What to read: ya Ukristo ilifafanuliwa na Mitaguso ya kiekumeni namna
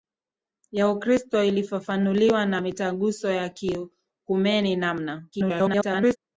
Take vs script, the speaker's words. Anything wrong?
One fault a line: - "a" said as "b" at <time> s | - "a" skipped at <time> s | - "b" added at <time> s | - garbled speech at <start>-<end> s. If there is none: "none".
- garbled speech at 5.3-6.2 s